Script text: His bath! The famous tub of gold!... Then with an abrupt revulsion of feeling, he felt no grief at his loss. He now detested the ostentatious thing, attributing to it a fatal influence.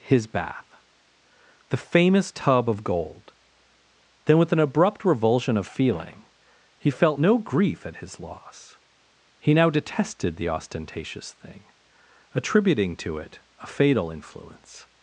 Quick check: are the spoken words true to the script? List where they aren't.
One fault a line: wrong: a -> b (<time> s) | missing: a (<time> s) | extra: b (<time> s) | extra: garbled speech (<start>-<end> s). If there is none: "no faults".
no faults